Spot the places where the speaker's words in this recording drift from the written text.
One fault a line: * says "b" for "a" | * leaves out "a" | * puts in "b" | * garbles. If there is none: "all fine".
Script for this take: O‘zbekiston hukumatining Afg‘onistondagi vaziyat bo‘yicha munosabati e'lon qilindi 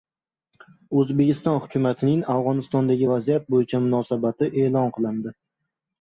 all fine